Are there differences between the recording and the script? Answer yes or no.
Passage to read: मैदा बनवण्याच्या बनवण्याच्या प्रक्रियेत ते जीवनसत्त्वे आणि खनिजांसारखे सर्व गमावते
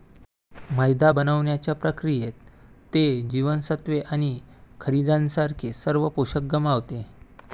yes